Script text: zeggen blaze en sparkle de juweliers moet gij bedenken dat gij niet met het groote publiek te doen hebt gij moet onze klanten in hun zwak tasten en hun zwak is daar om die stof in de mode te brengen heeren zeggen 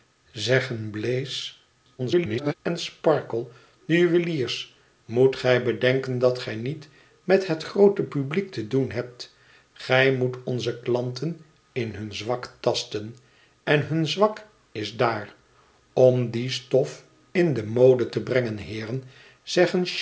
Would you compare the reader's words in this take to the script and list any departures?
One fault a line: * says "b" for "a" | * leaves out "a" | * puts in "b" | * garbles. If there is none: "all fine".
* garbles